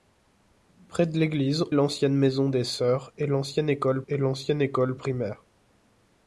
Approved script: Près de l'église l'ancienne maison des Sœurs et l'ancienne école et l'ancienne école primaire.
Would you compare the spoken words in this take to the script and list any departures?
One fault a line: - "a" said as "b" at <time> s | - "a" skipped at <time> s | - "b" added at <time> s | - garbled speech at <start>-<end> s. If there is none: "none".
none